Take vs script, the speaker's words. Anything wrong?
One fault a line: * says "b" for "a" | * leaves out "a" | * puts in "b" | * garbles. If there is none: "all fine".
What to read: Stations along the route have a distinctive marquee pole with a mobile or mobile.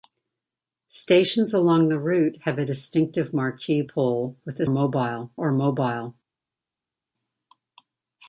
all fine